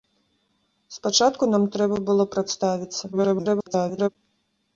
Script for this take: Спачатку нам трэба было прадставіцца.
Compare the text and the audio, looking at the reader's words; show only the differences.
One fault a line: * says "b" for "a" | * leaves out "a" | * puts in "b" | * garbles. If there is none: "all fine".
* garbles